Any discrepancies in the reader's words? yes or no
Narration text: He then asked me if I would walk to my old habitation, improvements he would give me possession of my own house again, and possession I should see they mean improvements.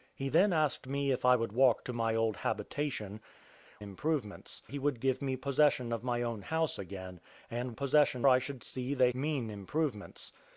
no